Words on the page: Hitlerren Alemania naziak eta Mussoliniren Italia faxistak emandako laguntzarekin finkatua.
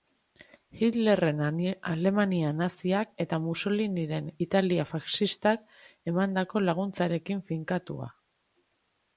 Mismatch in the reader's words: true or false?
false